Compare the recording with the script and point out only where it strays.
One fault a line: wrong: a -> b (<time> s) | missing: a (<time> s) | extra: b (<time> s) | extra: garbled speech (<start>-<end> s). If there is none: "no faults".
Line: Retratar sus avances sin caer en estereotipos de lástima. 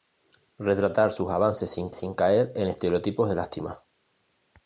extra: sin (1.9 s)